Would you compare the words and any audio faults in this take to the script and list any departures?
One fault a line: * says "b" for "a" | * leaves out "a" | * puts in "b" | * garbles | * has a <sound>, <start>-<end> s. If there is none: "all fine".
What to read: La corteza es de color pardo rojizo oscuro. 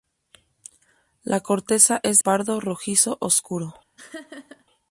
* leaves out "de color"
* has a laugh, 4.0-4.6 s